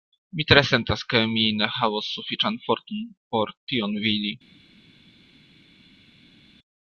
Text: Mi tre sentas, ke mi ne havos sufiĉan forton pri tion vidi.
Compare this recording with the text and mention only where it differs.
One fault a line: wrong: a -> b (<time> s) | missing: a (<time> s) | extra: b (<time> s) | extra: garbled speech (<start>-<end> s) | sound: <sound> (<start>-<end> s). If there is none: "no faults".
wrong: pri -> por (3.4 s)